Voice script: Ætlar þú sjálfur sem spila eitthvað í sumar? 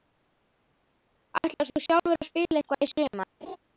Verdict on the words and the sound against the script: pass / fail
fail